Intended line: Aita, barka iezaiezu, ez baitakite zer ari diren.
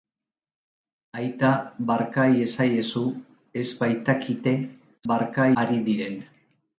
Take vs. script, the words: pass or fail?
fail